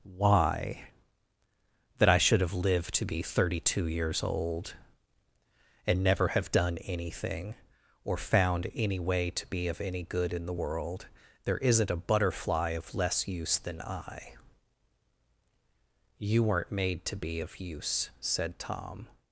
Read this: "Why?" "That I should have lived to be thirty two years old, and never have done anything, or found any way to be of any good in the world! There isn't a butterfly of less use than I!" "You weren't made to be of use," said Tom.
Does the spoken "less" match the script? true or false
true